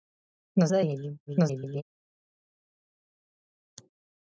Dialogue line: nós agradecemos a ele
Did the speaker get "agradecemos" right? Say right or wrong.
wrong